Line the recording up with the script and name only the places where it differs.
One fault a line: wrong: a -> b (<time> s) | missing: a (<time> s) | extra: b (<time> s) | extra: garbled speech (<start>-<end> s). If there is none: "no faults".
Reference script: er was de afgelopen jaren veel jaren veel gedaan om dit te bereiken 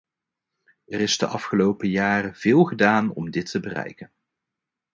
wrong: was -> is (1.0 s)
missing: jaren veel (2.6 s)